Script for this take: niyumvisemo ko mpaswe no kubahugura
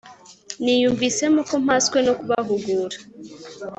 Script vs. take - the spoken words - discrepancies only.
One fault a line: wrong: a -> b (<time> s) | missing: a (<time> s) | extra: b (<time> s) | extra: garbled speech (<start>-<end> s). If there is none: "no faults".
no faults